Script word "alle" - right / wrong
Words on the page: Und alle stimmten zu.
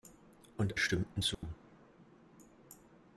wrong